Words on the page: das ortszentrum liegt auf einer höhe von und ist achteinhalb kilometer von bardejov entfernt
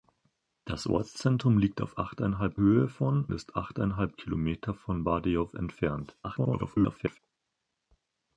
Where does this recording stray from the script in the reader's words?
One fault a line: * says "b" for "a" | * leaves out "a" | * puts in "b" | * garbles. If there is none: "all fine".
* says "achteinhalb" for "einer"
* leaves out "und"
* garbles